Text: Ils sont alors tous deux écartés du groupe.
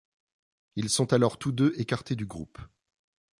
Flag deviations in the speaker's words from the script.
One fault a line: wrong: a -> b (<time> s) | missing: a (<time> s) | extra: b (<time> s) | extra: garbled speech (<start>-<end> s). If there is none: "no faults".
no faults